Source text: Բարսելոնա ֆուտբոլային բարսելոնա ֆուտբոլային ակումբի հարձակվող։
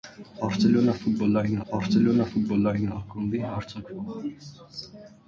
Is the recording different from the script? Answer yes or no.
no